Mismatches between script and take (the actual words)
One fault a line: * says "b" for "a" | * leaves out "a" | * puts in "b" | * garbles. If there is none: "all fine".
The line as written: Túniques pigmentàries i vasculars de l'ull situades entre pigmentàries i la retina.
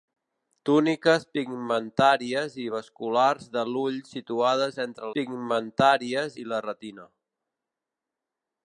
all fine